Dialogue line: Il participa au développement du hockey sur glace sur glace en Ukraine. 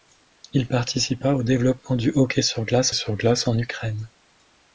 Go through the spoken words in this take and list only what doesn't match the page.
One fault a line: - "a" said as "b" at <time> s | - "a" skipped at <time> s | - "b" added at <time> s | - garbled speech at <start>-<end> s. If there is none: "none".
none